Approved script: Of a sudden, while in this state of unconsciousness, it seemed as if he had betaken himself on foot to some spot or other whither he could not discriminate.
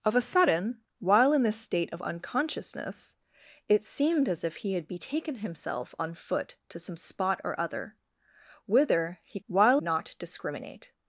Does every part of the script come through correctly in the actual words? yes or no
no